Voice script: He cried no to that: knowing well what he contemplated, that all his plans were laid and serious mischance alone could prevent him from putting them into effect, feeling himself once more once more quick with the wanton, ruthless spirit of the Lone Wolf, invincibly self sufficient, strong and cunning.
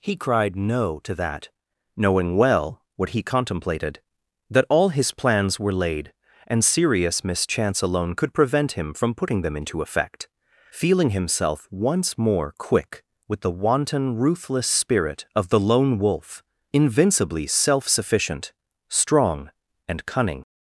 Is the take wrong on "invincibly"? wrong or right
right